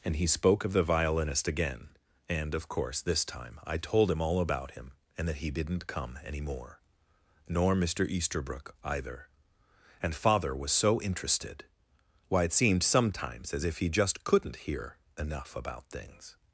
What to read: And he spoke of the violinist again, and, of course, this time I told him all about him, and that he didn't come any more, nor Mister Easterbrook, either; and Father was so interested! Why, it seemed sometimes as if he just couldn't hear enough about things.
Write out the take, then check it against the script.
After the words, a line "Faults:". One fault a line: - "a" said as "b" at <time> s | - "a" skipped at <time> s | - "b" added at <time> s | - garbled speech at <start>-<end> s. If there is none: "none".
And he spoke of the violinist again, and, of course, this time I told him all about him, and that he didn't come any more, nor Mister Easterbrook, either; and Father was so interested! Why, it seemed sometimes as if he just couldn't hear enough about things.
Faults:
none